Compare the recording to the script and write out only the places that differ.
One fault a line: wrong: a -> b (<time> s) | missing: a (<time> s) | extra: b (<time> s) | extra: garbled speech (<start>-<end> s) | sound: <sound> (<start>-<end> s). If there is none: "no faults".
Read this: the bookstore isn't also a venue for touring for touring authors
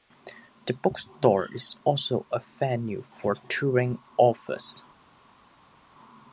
wrong: isn't -> is (1.5 s)
missing: for touring (4.0 s)